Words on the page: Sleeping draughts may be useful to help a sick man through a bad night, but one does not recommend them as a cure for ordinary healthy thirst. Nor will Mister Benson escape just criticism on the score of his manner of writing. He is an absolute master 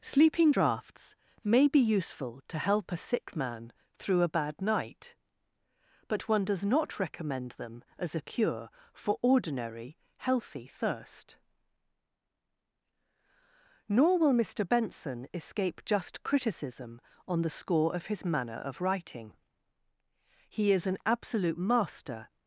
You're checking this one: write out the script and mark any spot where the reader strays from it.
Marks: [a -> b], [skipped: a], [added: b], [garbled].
Sleeping draughts may be useful to help a sick man through a bad night, but one does not recommend them as a cure for ordinary healthy thirst. Nor will Mister Benson escape just criticism on the score of his manner of writing. He is an absolute master